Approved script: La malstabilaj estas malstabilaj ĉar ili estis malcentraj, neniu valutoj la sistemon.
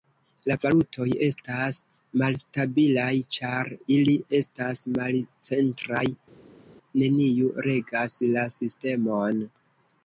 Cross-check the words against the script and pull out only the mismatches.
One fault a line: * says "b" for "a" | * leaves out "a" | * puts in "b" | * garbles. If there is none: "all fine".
* says "valutoj" for "malstabilaj"
* says "estas" for "estis"
* says "regas" for "valutoj"